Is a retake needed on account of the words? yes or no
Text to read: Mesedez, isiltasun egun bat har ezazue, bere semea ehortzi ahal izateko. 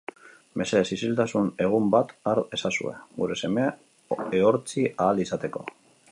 yes